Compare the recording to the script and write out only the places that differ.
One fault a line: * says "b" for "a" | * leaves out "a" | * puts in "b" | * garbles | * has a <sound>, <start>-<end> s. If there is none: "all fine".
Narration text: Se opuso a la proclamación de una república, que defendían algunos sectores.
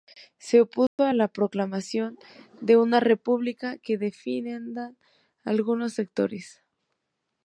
* has a dropout, 0.9-1.0 s